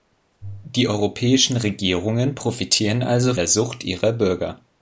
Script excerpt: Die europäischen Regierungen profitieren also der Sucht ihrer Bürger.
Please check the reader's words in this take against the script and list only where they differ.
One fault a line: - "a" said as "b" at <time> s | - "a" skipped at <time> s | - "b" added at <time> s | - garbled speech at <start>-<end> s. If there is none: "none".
none